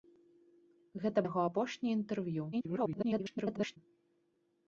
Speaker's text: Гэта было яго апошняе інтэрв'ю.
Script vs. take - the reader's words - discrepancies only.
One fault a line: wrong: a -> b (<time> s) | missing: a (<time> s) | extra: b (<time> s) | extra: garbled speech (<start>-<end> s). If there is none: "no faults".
missing: было (1.2 s)
extra: garbled speech (2.5-3.8 s)